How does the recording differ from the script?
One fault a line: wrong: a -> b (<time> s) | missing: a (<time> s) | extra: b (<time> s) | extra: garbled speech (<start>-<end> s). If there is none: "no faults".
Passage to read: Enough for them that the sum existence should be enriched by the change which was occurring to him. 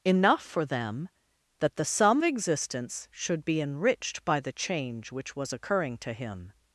no faults